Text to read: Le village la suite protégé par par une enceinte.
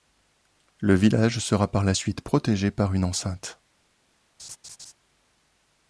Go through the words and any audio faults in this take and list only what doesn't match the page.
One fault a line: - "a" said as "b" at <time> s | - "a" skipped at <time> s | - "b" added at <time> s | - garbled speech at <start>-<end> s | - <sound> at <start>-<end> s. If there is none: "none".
- "sera par" added at 1.4 s
- "par" skipped at 2.9 s
- laugh at 4.4-4.9 s